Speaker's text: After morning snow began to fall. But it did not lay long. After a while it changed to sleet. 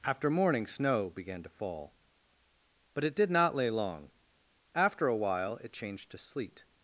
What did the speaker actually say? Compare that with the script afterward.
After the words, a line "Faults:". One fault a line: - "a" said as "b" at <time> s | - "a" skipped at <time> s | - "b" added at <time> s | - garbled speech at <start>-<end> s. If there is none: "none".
After morning snow began to fall. But it did not lay long. After a while it changed to sleet.
Faults:
none